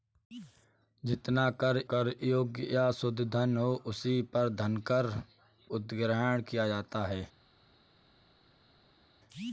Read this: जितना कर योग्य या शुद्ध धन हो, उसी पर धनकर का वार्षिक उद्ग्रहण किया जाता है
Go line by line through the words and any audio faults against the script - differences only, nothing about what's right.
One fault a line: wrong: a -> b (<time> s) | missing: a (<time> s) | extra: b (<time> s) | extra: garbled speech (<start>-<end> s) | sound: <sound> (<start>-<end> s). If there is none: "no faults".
extra: कर (1.9 s)
missing: का वार्षिक (5.1 s)